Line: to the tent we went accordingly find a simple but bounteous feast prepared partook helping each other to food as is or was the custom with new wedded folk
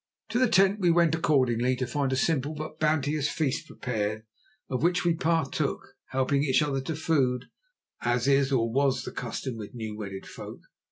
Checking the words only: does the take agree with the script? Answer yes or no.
no